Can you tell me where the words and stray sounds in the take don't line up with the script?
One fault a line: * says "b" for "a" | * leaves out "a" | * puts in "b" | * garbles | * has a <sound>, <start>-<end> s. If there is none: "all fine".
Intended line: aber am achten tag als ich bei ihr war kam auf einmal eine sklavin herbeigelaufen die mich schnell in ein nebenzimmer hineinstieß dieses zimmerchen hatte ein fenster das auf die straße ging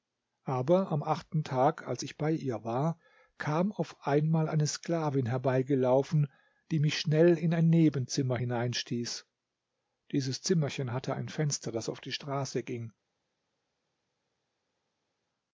all fine